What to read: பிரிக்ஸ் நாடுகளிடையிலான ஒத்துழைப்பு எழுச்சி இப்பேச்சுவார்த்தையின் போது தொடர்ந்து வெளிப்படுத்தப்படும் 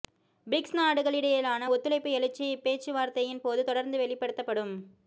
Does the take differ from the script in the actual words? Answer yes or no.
no